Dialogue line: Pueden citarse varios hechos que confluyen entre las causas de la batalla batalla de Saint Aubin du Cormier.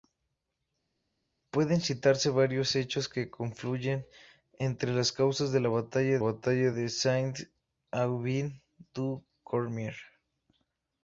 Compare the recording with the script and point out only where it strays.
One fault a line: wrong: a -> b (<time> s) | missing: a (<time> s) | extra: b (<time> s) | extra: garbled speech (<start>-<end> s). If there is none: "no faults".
no faults